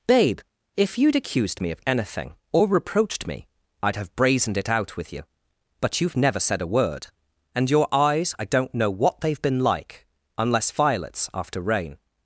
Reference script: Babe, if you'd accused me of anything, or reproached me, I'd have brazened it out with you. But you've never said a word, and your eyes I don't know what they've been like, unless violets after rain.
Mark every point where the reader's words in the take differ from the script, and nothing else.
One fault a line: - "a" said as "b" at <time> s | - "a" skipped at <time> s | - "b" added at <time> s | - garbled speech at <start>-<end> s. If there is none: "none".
none